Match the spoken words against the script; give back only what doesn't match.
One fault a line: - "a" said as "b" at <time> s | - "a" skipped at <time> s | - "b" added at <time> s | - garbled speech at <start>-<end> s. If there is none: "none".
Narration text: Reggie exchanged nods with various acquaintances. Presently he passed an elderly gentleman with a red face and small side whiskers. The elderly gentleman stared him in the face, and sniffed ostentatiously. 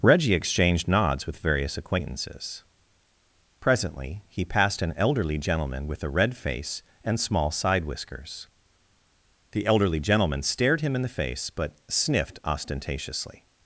- "and" said as "but" at 11.5 s